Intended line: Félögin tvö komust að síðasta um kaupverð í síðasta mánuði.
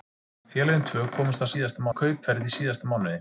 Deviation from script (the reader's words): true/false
false